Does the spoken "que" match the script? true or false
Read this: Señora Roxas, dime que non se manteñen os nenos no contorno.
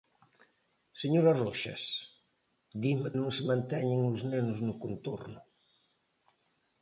false